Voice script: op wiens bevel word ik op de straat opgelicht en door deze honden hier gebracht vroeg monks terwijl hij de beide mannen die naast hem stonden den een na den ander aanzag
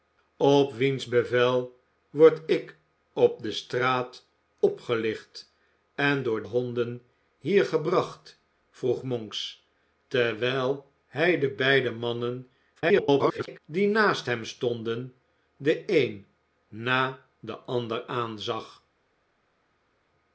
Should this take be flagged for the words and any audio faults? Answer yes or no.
yes